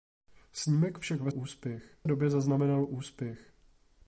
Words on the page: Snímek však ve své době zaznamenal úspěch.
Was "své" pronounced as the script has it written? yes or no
no